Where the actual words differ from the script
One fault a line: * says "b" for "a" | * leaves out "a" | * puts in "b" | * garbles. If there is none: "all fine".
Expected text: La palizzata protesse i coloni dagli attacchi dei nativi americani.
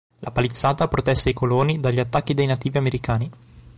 all fine